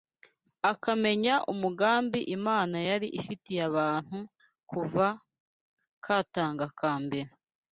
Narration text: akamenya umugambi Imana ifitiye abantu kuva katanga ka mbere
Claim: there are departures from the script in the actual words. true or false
true